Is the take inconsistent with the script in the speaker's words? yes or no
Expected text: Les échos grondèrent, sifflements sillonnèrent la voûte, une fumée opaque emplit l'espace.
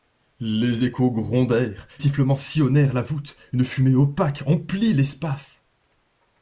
no